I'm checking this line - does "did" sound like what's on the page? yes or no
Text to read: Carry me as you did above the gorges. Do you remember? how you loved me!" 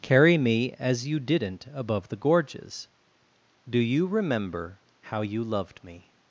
no